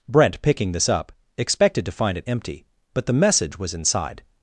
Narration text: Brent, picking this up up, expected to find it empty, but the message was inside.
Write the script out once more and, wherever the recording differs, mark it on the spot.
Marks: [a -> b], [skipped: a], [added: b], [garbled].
Brent, picking this up [skipped: up,] expected to find it empty, but the message was inside.